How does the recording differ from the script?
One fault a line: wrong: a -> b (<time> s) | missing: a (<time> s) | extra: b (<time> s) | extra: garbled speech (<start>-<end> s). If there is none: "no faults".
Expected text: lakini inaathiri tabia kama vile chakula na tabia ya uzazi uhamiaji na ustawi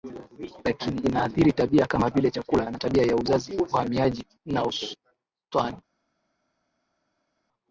no faults